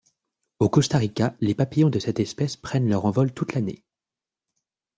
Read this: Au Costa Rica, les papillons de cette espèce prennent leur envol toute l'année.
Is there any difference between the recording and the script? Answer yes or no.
no